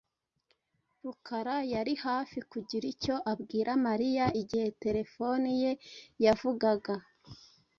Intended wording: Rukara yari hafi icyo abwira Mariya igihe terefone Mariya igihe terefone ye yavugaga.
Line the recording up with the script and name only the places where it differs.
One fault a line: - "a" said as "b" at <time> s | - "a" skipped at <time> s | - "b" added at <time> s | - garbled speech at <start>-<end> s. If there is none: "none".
- "kugira" added at 2.5 s
- "Mariya igihe terefone" skipped at 5.5 s